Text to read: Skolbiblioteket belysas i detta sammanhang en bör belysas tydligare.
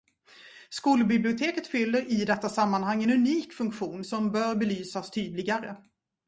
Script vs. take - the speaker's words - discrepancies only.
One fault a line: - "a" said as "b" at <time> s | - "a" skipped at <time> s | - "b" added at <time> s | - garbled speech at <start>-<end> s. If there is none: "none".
- "belysas" said as "fyller" at 1.7 s
- "unik funktion som" added at 3.1 s